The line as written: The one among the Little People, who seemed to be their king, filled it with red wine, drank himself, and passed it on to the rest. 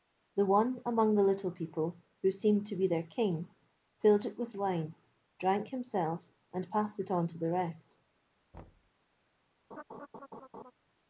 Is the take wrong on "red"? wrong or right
wrong